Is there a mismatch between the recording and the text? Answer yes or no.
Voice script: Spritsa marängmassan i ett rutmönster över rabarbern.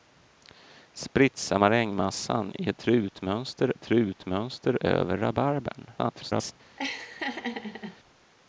yes